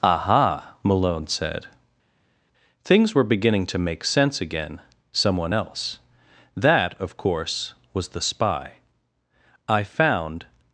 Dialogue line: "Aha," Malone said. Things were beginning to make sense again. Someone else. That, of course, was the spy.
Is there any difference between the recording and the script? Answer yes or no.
yes